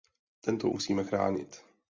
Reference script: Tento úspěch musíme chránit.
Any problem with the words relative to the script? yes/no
yes